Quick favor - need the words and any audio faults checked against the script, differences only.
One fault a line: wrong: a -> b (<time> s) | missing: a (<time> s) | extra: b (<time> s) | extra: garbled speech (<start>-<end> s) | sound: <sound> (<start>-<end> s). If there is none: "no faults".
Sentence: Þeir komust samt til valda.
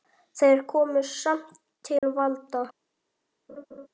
sound: dropout (2.0-2.0 s)
sound: laugh (3.5-3.9 s)